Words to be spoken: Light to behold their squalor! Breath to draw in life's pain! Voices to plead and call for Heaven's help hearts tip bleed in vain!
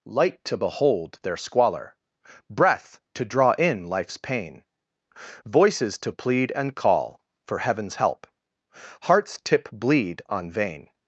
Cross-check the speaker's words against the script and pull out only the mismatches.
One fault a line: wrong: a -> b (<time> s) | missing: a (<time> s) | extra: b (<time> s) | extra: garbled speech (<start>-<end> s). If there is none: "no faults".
wrong: in -> on (10.3 s)